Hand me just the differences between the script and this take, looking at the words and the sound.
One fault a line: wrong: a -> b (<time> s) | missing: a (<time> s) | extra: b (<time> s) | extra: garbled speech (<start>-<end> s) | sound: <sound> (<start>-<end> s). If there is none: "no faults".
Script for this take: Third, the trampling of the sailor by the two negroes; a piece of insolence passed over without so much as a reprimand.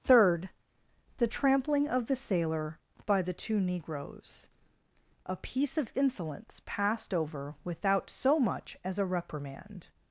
no faults